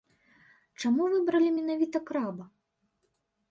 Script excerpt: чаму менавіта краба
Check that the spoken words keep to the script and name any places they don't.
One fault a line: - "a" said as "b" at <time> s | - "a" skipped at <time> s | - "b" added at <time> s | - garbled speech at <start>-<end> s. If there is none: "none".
- "выбралі" added at 1.1 s